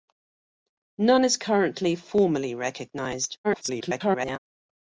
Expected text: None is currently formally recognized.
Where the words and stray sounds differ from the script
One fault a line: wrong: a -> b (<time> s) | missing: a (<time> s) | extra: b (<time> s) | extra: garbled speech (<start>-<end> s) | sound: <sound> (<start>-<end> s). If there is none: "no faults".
extra: garbled speech (3.4-4.4 s)